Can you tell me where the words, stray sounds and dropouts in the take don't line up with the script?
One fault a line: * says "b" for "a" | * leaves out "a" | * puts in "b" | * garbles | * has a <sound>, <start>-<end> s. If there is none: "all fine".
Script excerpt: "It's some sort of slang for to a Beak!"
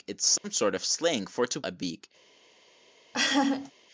* has a dropout, 0.4-0.4 s
* has a laugh, 3.1-3.7 s